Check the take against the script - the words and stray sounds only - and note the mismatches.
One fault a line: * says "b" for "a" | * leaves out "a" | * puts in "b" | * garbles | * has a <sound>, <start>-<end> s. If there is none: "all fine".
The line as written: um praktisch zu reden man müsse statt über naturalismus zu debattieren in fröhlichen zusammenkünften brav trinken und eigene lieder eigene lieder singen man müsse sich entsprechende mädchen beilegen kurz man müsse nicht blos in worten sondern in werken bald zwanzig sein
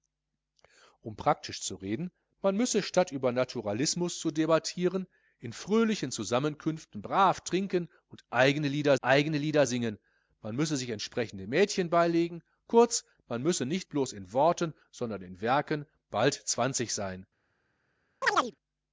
* has a chirp, 18.2-18.6 s